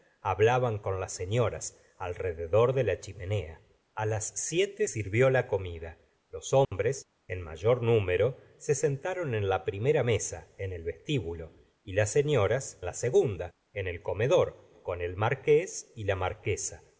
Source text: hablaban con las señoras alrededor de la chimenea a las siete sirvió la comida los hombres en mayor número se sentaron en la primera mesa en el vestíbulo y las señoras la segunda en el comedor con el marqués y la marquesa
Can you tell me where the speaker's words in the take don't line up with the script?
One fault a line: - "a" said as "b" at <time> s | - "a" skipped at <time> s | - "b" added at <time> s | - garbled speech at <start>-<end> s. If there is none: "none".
none